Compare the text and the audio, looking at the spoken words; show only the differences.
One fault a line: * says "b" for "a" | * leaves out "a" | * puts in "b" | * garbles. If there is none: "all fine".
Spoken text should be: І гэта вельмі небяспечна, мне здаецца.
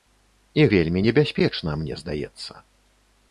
* leaves out "гэта"